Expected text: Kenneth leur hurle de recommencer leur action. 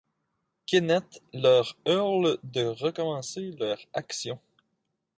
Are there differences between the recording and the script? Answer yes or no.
no